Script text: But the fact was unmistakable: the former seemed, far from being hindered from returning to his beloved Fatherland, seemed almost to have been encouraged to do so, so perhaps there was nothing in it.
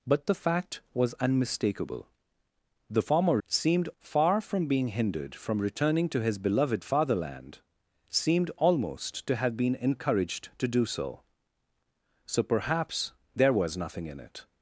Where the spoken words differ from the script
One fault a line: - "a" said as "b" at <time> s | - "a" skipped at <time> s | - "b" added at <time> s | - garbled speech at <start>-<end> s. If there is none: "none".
none